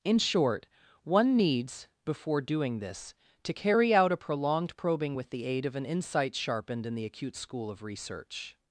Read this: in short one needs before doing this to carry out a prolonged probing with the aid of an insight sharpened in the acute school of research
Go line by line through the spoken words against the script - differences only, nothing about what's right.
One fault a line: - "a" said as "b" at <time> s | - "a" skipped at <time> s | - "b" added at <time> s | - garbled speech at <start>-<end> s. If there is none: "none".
none